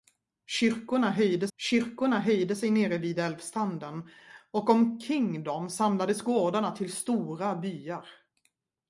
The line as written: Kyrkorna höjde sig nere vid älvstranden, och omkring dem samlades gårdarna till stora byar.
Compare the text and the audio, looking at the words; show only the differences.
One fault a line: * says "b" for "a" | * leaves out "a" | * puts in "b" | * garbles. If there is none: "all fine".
* puts in "kyrkorna höjde"